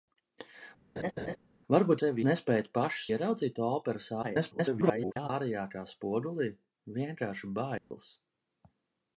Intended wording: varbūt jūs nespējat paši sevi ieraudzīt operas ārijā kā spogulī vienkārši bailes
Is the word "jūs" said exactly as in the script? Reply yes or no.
no